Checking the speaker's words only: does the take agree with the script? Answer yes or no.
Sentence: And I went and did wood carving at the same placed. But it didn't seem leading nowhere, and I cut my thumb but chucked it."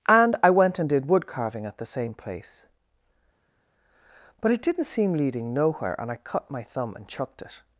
no